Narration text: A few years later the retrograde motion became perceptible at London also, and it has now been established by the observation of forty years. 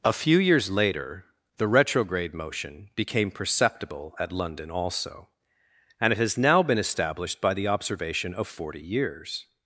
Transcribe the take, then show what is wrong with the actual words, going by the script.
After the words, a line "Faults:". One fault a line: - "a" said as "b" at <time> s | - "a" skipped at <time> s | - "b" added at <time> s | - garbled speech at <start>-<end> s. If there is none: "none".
A few years later the retrograde motion became perceptible at London also, and it has now been established by the observation of forty years.
Faults:
none